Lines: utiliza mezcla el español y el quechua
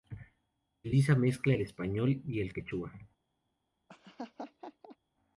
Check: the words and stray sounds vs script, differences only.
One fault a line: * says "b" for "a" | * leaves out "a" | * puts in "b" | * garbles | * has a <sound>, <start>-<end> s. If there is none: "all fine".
* has a laugh, 3.9-5.0 s